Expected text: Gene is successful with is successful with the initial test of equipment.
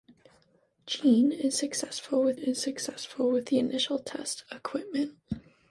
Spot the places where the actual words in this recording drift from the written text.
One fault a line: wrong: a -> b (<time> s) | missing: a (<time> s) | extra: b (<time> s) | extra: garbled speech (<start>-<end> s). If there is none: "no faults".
no faults